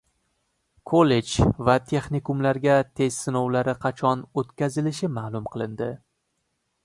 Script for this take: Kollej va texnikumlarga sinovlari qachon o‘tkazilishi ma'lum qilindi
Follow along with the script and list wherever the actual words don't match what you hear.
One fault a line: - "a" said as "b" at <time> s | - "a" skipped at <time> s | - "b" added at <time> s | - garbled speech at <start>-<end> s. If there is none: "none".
- "test" added at 3.0 s